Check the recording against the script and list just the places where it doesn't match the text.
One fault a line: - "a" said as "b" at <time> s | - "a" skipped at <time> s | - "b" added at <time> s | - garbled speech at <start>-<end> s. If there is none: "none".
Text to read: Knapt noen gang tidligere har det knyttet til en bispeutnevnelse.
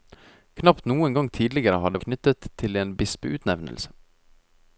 none